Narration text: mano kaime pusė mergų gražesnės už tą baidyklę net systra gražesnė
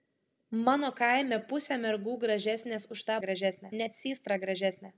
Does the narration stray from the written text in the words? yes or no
yes